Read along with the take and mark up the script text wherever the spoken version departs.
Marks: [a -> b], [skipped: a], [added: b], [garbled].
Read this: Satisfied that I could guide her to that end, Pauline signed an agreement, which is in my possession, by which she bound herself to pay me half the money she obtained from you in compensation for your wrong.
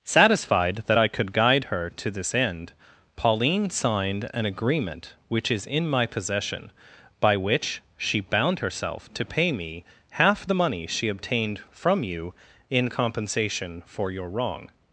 Satisfied that I could guide her to [that -> this] end, Pauline signed an agreement, which is in my possession, by which she bound herself to pay me half the money she obtained from you in compensation for your wrong.